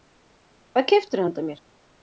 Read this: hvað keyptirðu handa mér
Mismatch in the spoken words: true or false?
false